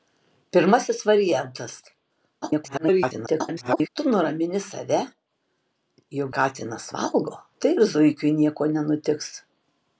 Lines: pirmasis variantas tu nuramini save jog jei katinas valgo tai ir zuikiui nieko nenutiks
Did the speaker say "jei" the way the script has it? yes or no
no